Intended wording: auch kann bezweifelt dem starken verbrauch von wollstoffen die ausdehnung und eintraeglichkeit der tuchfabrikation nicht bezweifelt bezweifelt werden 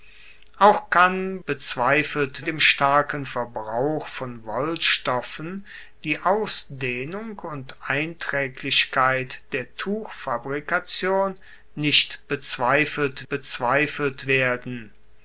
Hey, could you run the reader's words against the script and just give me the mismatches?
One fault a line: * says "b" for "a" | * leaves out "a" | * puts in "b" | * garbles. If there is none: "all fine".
all fine